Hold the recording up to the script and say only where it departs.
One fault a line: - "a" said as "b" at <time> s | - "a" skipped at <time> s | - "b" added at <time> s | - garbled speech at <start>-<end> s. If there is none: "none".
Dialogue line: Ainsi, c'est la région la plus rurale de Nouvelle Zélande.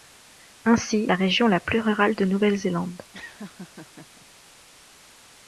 - "c'est" skipped at 1.1 s